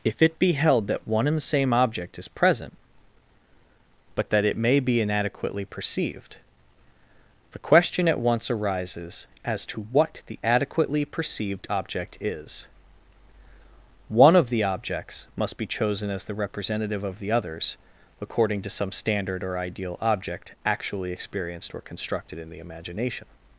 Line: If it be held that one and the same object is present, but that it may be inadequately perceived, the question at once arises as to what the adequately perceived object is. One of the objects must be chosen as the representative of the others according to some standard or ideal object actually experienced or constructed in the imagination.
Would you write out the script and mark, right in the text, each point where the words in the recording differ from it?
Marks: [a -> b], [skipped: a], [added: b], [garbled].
If it be held that one and the same object is present, but that it may be inadequately perceived, the question at once arises as to what the adequately perceived object is. One of the objects must be chosen as the representative of the others according to some standard or ideal object actually experienced or constructed in the imagination.